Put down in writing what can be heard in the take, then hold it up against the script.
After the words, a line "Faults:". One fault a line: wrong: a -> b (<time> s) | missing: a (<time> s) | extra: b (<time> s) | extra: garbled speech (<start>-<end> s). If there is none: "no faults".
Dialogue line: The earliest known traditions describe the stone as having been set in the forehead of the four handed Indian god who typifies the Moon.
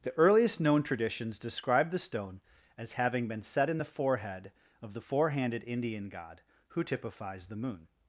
The earliest known traditions describe the stone as having been set in the forehead of the four handed Indian god who typifies the Moon.
Faults:
no faults